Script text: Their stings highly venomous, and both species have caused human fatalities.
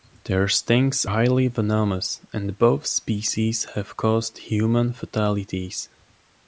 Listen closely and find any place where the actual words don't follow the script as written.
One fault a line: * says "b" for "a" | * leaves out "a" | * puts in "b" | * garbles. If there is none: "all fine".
all fine